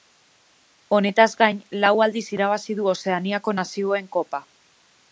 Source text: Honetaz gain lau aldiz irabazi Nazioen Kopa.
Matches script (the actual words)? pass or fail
fail